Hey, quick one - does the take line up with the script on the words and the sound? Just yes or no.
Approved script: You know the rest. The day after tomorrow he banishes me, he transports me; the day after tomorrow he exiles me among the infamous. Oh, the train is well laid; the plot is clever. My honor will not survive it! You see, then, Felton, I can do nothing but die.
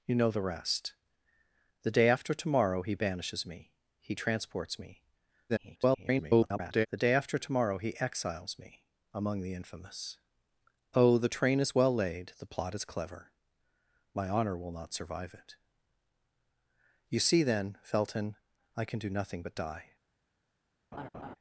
no